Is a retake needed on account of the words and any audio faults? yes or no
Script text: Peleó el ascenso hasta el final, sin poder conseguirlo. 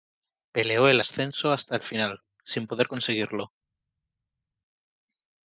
no